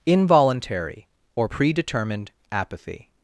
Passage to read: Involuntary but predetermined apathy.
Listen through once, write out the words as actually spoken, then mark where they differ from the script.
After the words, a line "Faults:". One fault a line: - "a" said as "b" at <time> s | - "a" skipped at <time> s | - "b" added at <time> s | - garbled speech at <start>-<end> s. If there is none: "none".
Involuntary or predetermined apathy.
Faults:
- "but" said as "or" at 1.4 s